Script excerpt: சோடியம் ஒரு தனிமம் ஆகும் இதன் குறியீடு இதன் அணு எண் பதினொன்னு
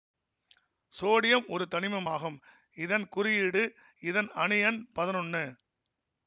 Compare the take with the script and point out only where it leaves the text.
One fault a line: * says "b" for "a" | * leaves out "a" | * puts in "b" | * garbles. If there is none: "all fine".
all fine